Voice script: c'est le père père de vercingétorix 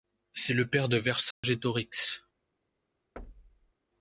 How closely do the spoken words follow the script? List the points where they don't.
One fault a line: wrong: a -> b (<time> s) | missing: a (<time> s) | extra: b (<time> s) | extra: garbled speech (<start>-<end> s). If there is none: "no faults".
missing: père (0.9 s)